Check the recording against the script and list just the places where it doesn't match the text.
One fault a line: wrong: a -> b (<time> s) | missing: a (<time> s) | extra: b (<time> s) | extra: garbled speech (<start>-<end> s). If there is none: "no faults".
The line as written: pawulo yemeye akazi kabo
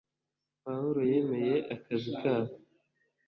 no faults